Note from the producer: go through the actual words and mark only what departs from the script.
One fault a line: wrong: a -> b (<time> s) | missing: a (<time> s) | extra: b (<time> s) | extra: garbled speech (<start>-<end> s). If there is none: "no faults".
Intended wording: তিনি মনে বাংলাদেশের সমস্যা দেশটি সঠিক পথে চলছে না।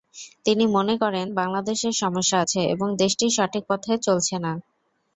extra: করেন (1.0 s)
extra: আছে এবং (2.4 s)